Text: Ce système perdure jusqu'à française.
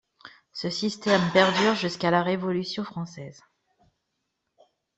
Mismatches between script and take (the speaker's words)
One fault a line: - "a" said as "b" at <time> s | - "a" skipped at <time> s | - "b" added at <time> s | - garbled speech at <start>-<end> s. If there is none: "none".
- "la Révolution" added at 2.1 s